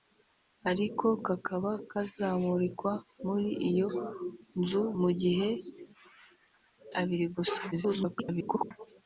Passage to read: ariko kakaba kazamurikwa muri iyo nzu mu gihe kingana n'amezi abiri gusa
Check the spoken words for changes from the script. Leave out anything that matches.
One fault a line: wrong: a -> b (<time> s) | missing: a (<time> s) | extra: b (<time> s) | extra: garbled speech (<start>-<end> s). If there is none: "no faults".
missing: kingana n'amezi (5.5 s)
extra: garbled speech (7.7-8.7 s)